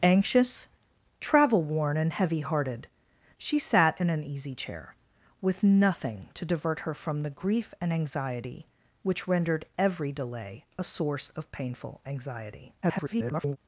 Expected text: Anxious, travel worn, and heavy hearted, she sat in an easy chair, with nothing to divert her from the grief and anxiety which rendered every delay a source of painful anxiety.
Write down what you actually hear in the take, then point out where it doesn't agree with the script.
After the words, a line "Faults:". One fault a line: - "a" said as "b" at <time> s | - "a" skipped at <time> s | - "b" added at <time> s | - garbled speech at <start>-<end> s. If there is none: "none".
Anxious, travel worn, and heavy hearted, she sat in an easy chair, with nothing to divert her from the grief and anxiety which rendered every delay a source of painful anxiety. [garbled]
Faults:
- garbled speech at 12.8-13.6 s